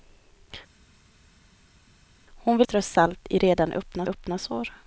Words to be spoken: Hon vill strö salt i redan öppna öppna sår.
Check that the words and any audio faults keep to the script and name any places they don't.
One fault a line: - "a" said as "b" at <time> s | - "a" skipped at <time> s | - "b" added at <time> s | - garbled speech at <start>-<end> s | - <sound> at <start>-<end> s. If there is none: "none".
none